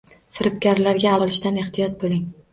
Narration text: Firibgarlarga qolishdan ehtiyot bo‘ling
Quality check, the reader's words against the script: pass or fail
pass